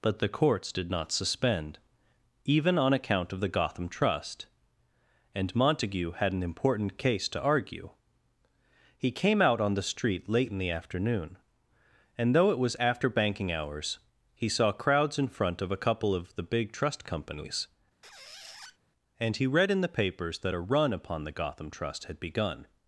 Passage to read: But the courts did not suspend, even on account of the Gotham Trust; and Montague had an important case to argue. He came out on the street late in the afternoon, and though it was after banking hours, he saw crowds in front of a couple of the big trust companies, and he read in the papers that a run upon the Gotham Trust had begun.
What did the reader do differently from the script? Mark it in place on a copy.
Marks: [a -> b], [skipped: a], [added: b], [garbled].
But the courts did not suspend, even on account of the Gotham Trust; and Montague had an important case to argue. He came out on the street late in the afternoon, and though it was after banking hours, he saw crowds in front of a couple of the big trust companies, and he read in the papers that a run upon the Gotham Trust had begun.